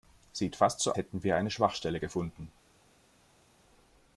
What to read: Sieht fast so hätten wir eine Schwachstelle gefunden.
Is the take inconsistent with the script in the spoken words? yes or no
no